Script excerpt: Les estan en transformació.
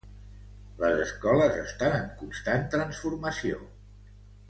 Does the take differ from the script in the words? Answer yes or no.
yes